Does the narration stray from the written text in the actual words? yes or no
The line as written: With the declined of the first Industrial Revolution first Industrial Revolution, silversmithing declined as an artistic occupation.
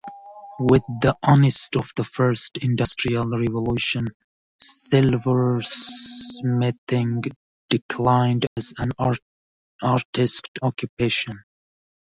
yes